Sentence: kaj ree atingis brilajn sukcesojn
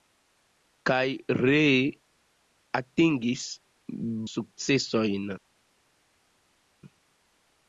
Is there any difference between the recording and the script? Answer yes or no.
yes